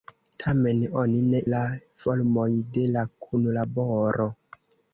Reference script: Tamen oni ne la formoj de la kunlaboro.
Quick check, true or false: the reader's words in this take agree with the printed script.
true